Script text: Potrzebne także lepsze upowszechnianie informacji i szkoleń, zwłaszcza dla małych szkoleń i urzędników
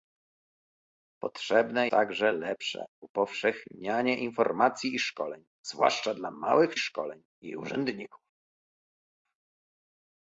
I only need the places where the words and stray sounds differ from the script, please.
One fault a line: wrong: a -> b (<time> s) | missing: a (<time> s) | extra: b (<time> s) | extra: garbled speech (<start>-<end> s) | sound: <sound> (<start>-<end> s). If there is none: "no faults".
no faults